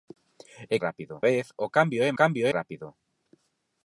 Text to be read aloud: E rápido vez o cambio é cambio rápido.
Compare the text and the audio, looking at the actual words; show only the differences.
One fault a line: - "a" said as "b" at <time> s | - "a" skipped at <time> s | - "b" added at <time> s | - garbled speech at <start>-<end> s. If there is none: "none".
none